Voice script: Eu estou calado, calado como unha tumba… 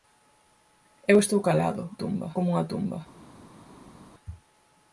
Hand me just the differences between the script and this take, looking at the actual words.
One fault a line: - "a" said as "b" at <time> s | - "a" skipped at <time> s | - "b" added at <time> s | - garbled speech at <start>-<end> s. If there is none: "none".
- "calado" said as "tumba" at 2.0 s